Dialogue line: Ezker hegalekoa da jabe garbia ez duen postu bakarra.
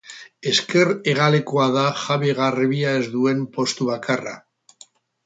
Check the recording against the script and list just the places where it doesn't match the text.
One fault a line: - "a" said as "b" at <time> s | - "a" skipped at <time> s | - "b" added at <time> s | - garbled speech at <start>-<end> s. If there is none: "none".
none